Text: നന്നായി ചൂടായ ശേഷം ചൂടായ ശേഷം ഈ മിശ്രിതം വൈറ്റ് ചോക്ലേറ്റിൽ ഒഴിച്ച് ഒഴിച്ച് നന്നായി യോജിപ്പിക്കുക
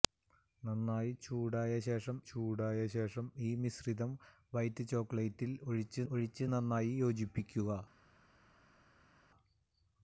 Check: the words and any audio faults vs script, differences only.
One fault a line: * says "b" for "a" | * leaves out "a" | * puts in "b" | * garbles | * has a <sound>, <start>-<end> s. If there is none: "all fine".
all fine